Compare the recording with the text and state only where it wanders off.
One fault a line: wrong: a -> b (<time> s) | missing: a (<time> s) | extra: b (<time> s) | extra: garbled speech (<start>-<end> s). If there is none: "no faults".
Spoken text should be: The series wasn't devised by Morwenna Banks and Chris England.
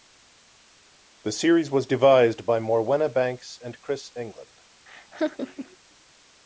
wrong: wasn't -> was (1.7 s)